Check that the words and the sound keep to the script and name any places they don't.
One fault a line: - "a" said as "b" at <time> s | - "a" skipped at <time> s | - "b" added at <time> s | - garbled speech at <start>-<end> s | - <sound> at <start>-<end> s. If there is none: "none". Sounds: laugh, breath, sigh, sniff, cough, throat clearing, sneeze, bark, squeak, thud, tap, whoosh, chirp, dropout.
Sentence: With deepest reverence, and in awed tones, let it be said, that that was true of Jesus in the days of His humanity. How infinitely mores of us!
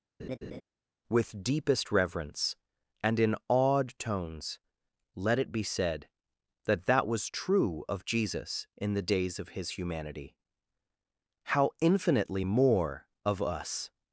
- laugh at 0.2-0.6 s
- "mores" said as "more" at 12.4 s